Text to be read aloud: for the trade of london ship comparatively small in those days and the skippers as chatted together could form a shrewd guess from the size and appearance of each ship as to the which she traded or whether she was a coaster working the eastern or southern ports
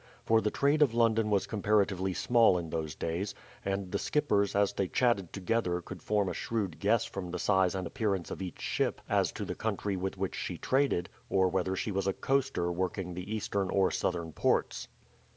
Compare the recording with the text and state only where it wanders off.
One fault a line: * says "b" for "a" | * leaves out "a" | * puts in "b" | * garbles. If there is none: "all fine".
* says "was" for "ship"
* puts in "they"
* puts in "country with"